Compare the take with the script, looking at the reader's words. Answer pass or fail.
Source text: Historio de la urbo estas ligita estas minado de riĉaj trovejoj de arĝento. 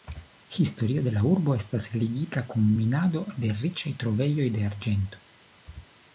fail